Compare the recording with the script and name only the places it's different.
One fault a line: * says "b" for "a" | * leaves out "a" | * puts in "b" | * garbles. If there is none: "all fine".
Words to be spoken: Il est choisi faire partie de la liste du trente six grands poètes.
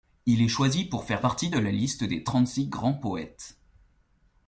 * puts in "pour"
* says "des" for "du"